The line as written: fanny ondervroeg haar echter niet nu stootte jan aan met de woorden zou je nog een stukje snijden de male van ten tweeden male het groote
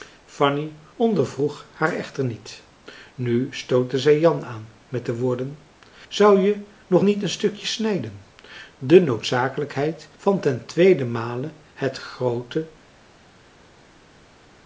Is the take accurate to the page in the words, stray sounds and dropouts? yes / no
no